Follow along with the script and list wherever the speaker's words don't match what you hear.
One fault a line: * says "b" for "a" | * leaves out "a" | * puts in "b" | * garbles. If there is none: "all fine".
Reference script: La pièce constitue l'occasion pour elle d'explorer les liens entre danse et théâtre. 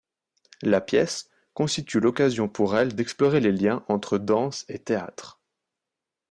all fine